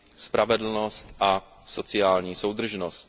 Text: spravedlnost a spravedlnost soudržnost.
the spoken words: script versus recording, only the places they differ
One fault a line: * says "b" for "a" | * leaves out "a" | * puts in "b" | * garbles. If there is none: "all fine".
* says "sociální" for "spravedlnost"